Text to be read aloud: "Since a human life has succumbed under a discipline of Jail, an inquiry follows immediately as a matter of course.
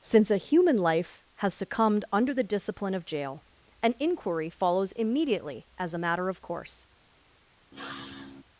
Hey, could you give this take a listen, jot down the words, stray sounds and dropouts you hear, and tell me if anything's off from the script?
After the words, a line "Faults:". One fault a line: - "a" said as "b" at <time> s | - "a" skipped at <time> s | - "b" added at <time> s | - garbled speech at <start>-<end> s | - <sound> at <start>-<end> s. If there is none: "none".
"Since a human life has succumbed under the discipline of Jail, an inquiry follows immediately as a matter of course.
Faults:
- "a" said as "the" at 2.3 s
- sniff at 7.7-8.4 s